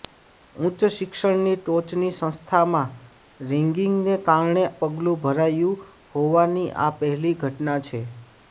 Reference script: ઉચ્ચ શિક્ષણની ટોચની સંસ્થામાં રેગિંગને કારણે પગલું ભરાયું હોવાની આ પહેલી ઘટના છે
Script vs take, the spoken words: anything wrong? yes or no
no